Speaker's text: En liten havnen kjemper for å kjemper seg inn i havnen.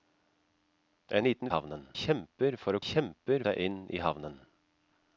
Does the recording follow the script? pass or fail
pass